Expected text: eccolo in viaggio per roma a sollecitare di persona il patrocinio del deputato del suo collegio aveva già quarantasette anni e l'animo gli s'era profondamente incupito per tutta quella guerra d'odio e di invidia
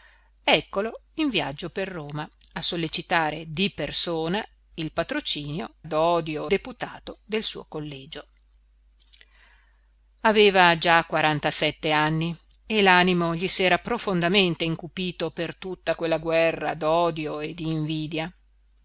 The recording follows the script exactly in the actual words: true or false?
false